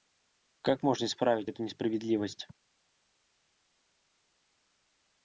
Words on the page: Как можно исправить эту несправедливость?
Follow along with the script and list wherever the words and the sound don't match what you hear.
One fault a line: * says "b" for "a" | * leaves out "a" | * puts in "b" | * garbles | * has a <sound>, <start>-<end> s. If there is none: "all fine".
all fine